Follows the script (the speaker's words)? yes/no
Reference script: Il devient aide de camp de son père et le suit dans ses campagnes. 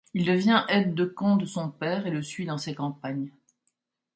yes